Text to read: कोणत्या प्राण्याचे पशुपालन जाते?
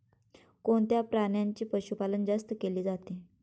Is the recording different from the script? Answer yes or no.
yes